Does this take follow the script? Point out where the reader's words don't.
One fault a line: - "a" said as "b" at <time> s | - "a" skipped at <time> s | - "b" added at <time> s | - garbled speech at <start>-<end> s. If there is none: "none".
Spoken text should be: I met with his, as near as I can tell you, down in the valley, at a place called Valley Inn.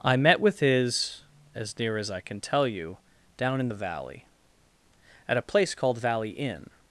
none